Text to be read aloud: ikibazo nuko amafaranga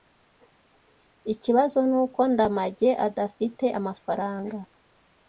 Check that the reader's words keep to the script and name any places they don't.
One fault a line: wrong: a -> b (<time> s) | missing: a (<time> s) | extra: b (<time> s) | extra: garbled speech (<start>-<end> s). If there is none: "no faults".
extra: ndamage adafite (2.3 s)